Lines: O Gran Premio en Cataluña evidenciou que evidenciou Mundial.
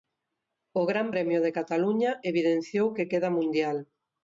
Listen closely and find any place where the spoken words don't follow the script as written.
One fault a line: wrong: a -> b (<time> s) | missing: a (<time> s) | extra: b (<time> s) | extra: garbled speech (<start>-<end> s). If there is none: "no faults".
wrong: en -> de (1.4 s)
wrong: evidenciou -> queda (3.1 s)